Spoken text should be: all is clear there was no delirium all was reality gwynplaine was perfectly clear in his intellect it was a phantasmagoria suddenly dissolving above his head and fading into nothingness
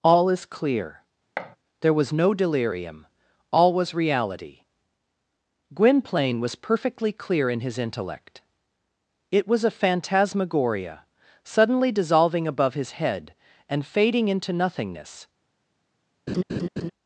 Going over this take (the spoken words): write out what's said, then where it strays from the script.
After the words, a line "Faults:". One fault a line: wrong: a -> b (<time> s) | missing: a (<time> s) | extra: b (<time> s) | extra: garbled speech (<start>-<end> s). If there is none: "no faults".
all is clear there was no delirium all was reality gwynplaine was perfectly clear in his intellect it was a phantasmagoria suddenly dissolving above his head and fading into nothingness
Faults:
no faults